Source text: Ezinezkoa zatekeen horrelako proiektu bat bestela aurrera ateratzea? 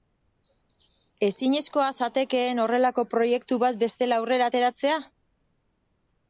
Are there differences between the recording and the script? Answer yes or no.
no